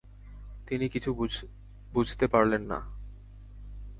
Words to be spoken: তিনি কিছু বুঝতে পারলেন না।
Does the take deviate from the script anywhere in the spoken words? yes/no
no